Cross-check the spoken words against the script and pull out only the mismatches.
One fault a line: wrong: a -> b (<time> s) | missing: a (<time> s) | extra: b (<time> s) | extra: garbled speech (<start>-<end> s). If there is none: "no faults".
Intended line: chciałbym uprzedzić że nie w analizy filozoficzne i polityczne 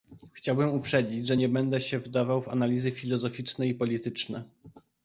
extra: będę się wdawał (1.5 s)